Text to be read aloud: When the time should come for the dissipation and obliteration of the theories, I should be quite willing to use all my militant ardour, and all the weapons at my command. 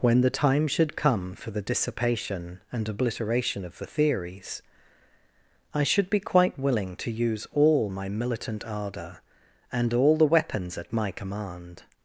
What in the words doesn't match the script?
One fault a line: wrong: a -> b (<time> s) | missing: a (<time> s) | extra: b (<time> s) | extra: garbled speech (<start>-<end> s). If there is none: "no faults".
no faults